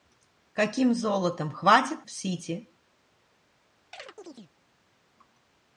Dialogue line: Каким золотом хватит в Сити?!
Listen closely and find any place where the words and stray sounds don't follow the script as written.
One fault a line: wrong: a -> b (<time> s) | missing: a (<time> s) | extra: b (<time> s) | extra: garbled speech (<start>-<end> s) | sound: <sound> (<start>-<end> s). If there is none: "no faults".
sound: chirp (3.9-4.5 s)